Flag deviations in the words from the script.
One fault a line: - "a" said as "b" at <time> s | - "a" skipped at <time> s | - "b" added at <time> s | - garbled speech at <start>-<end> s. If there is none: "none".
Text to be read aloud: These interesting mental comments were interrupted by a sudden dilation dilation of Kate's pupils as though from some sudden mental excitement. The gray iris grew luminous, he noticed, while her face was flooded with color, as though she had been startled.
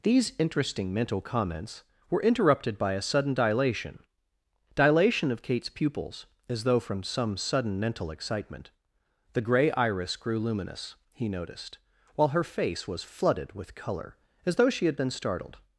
none